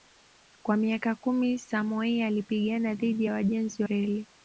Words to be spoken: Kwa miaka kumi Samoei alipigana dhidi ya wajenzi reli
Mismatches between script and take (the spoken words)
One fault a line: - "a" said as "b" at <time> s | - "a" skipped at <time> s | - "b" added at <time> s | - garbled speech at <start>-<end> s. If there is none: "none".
none